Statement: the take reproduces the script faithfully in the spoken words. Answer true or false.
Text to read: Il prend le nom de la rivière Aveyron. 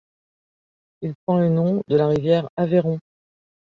true